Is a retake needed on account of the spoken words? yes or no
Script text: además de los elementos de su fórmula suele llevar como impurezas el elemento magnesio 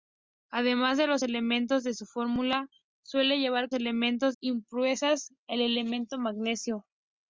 yes